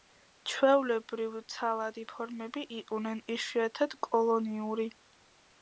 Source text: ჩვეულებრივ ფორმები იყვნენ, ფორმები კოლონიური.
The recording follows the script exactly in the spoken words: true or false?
false